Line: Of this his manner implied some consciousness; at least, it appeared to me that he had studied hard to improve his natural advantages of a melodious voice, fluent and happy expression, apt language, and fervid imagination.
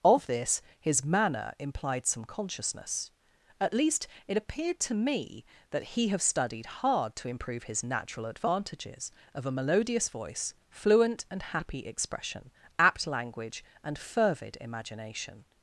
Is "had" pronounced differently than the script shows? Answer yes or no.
yes